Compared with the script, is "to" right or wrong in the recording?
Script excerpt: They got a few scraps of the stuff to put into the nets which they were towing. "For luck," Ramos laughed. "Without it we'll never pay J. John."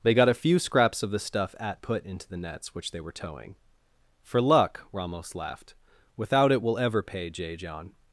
wrong